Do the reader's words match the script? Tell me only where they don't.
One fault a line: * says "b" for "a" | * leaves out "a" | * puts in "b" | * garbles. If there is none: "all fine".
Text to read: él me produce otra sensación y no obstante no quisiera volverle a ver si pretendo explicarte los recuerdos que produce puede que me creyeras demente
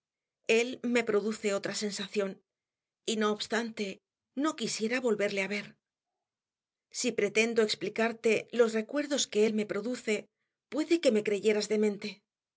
* puts in "él me"